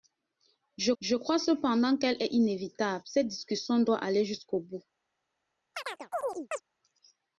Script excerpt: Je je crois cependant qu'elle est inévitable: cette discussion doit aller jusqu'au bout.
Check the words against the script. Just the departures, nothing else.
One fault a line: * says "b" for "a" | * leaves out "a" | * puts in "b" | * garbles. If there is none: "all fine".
all fine